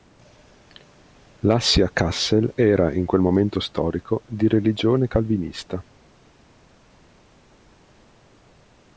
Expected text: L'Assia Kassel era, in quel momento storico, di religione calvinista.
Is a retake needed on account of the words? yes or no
no